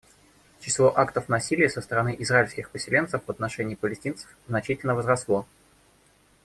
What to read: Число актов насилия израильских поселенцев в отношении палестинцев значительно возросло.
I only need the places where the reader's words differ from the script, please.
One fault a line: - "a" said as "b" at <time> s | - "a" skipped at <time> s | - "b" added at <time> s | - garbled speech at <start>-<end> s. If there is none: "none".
- "со стороны" added at 1.7 s